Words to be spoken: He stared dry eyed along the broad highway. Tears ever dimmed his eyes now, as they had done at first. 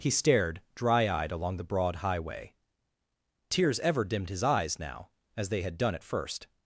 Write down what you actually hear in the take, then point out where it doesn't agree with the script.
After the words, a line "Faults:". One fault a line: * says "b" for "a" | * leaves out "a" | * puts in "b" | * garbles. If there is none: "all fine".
He stared dry eyed along the broad highway. Tears ever dimmed his eyes now, as they had done at first.
Faults:
all fine